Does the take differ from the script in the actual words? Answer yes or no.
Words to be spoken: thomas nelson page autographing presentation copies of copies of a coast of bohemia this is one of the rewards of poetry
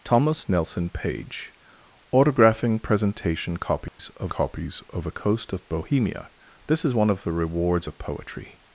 no